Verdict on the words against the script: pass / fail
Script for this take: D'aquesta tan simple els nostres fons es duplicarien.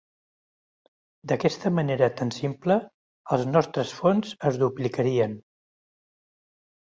fail